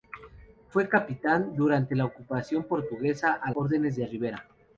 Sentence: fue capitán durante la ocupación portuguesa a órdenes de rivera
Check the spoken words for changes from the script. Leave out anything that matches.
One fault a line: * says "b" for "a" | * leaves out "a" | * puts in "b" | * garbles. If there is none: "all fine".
all fine